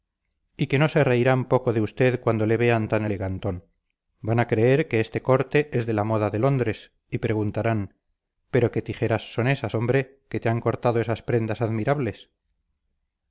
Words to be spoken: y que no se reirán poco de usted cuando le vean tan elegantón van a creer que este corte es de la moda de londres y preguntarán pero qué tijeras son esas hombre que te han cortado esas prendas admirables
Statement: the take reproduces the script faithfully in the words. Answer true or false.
true